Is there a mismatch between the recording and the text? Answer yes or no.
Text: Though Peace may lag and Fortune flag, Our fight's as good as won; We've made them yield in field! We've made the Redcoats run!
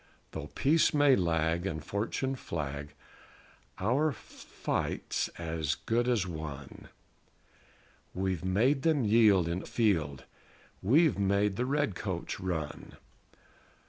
no